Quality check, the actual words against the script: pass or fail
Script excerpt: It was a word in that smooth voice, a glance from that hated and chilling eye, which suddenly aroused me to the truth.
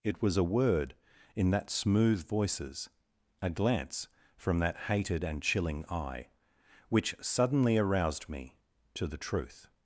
fail